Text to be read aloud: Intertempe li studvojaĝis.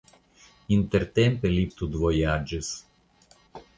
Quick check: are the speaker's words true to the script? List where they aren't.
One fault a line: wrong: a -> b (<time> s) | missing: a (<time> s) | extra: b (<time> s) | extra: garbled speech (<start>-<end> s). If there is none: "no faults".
no faults